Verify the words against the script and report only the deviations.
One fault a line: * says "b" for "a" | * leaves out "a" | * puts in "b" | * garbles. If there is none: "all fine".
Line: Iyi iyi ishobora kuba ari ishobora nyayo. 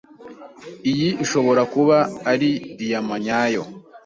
* leaves out "iyi"
* says "diyama" for "ishobora"